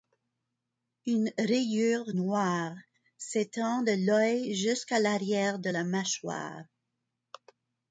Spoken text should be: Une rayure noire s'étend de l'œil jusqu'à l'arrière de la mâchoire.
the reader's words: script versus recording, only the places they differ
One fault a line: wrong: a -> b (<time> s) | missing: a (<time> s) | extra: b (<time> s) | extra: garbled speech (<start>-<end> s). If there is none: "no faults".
no faults